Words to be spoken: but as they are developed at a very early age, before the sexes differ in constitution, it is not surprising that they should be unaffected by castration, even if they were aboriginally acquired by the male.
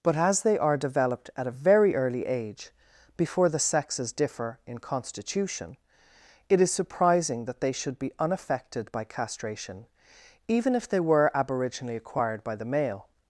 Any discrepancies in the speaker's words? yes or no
yes